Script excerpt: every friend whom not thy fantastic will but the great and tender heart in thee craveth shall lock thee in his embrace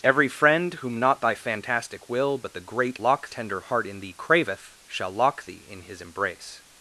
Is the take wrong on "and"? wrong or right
wrong